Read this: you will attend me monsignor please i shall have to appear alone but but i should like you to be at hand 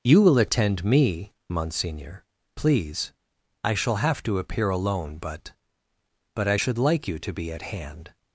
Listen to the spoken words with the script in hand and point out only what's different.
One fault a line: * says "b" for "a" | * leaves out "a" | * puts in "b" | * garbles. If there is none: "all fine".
all fine